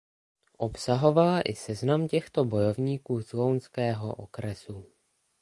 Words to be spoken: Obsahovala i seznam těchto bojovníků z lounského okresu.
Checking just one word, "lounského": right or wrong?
right